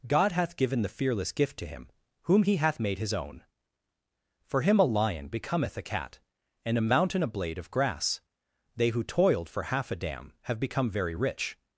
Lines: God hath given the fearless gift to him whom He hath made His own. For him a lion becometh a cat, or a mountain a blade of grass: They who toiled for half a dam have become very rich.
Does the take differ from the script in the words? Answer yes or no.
yes